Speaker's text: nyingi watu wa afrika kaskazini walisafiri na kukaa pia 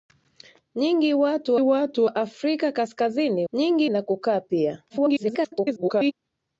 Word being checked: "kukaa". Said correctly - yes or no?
yes